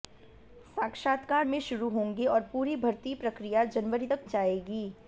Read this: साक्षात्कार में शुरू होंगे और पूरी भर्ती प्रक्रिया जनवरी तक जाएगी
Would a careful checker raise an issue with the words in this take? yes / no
no